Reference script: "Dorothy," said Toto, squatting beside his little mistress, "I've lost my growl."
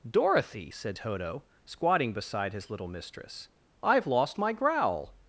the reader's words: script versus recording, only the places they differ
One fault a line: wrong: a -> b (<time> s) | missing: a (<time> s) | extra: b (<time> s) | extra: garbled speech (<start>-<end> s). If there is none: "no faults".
no faults